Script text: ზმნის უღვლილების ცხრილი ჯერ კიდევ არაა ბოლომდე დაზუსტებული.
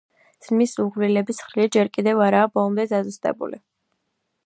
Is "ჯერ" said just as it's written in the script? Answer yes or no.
yes